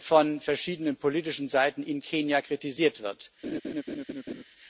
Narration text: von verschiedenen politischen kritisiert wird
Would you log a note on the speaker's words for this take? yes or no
yes